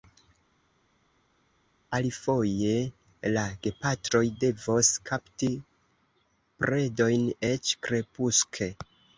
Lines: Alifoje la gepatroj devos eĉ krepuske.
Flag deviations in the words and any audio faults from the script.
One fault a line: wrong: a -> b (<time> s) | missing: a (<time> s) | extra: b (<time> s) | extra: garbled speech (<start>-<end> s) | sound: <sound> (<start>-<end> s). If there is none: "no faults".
extra: kapti predojn (5.1 s)